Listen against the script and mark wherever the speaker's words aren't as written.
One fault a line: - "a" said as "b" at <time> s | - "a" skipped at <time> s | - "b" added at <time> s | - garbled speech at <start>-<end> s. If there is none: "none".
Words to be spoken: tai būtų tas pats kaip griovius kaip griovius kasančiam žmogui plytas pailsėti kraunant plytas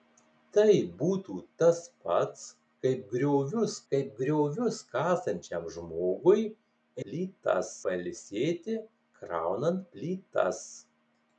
none